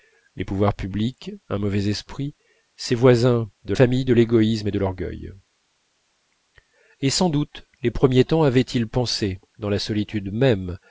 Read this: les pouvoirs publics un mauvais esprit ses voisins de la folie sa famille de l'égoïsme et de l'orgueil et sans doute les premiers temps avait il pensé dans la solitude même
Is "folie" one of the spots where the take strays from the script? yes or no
yes